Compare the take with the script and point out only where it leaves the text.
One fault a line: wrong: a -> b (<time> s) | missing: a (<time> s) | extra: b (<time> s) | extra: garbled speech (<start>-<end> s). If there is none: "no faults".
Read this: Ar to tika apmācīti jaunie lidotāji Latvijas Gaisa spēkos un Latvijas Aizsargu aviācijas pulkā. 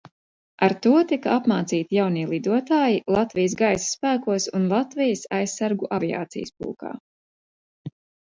no faults